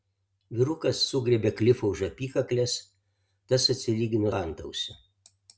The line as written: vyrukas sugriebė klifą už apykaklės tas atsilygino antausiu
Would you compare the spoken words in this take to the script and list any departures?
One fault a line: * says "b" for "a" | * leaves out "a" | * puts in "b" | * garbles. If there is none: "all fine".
all fine